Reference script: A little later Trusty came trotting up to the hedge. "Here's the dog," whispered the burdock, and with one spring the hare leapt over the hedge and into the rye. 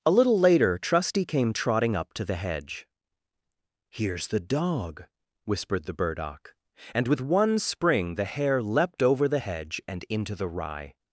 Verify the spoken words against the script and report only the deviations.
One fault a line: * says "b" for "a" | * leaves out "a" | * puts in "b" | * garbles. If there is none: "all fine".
all fine